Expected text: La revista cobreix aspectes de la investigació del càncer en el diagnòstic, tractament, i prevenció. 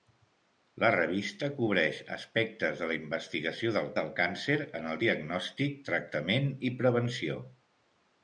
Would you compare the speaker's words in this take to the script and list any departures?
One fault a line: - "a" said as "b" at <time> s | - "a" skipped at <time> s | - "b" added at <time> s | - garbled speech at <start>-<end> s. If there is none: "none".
- "del" added at 4.0 s